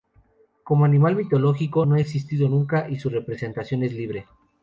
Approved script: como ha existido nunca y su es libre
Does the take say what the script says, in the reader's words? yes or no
no